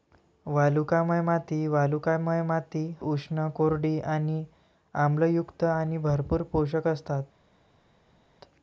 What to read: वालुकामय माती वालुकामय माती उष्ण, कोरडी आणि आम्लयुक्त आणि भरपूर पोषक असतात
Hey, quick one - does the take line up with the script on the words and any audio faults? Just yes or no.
yes